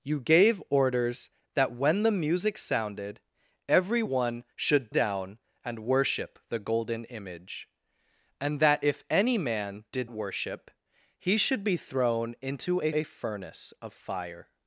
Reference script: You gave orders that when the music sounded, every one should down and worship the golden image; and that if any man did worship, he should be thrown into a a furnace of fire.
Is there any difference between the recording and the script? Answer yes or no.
no